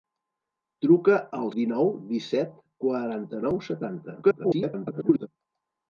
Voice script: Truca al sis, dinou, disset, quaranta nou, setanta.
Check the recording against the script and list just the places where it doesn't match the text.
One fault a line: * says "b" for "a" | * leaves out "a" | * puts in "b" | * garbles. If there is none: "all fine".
* leaves out "sis"
* garbles